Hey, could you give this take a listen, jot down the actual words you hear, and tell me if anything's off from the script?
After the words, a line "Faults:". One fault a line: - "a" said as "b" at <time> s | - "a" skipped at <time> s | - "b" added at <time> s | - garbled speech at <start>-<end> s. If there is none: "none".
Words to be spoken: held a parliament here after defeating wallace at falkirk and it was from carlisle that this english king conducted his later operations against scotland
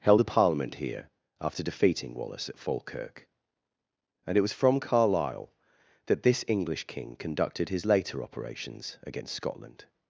held a parliament here after defeating wallace at falkirk and it was from carlisle that this english king conducted his later operations against scotland
Faults:
none